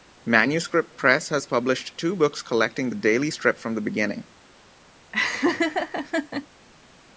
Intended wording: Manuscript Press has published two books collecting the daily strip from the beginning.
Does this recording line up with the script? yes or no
yes